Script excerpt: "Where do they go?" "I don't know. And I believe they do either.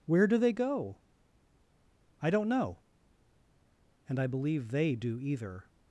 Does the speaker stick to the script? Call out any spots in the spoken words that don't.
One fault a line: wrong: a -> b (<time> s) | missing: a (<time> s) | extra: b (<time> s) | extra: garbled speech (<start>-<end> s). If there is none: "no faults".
no faults